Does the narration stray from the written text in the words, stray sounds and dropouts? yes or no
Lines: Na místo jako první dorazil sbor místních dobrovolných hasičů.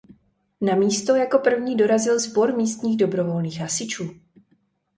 no